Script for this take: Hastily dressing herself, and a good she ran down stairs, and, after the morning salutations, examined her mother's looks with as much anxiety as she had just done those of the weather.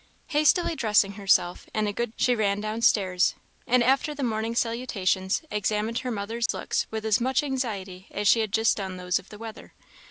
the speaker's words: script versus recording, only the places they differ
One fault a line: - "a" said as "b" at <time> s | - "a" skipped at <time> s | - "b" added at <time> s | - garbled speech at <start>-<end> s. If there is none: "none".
none